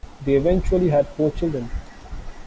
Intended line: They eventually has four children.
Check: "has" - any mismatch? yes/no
yes